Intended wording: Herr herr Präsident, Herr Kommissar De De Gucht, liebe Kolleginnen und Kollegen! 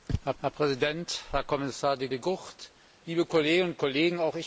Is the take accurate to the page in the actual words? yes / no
yes